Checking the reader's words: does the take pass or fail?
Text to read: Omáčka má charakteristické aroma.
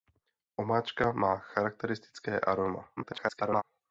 fail